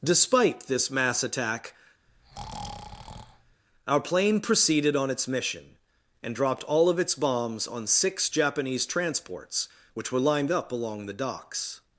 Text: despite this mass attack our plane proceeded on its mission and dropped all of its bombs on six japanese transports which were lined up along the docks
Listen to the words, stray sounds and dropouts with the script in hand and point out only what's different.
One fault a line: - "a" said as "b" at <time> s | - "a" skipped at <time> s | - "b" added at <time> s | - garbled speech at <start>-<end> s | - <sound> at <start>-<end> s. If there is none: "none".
- breath at 2.1-3.6 s